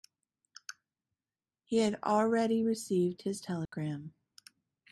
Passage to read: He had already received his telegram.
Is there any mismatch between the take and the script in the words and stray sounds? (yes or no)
yes